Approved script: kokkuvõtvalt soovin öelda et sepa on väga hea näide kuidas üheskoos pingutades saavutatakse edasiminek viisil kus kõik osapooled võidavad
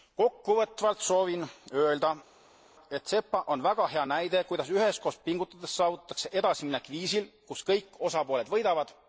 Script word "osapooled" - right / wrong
right